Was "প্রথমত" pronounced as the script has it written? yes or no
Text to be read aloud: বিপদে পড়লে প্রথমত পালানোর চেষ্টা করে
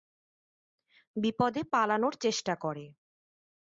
no